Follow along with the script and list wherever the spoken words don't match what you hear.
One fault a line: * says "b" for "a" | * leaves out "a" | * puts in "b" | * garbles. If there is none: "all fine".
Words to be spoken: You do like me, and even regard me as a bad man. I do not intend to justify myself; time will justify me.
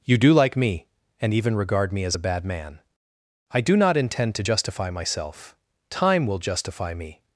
all fine